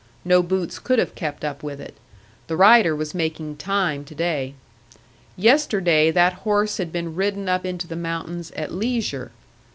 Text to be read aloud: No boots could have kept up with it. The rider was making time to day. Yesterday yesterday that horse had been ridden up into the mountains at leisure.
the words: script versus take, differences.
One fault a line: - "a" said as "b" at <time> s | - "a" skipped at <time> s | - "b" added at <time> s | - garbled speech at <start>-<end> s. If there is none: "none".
- "yesterday" skipped at 6.1 s